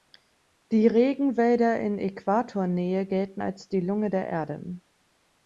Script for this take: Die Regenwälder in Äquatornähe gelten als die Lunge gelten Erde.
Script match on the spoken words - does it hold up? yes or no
no